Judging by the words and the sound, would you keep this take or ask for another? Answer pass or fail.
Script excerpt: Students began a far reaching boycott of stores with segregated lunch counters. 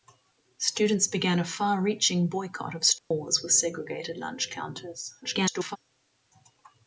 fail